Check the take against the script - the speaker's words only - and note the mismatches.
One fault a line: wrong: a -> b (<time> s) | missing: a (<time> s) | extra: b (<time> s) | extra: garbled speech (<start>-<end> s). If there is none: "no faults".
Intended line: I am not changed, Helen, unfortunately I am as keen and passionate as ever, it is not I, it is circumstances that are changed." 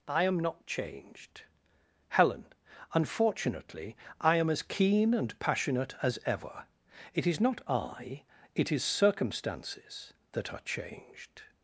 no faults